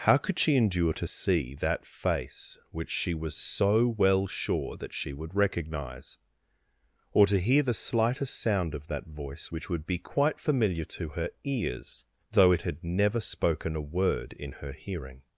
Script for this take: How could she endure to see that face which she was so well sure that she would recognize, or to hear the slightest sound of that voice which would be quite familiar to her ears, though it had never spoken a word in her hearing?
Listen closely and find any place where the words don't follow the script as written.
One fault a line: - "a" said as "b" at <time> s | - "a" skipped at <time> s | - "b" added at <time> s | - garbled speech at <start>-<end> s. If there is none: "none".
none